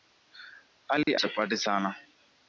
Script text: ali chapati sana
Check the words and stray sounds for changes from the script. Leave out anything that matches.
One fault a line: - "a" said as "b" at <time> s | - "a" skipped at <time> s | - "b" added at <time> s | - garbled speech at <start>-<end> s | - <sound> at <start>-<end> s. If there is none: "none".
- dropout at 1.0-1.1 s